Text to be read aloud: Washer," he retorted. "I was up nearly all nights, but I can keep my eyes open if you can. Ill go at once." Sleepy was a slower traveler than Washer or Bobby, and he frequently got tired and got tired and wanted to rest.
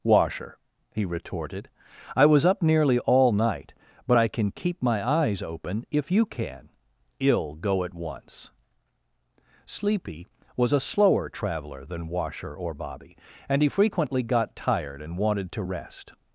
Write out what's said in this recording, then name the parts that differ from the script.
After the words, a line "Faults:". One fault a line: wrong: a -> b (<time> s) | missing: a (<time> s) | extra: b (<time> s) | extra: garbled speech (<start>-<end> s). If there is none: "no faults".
Washer," he retorted. "I was up nearly all night, but I can keep my eyes open if you can. Ill go at once." Sleepy was a slower traveler than Washer or Bobby, and he frequently got tired and wanted to rest.
Faults:
wrong: nights -> night (3.3 s)
missing: got tired and (15.2 s)